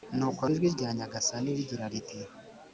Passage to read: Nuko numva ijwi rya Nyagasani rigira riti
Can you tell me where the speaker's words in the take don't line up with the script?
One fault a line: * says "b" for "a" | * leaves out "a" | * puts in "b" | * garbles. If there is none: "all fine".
* leaves out "numva"